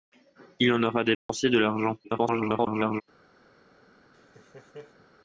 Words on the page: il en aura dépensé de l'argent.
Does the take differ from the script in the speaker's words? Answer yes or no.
yes